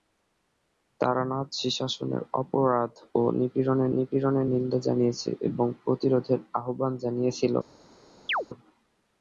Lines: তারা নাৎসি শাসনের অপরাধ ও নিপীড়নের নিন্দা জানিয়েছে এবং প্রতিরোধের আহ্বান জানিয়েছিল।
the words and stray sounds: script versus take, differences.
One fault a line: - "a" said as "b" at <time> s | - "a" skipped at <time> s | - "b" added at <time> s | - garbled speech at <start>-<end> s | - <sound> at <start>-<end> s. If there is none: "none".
- "নিপীড়নের" added at 4.0 s
- chirp at 8.3-8.5 s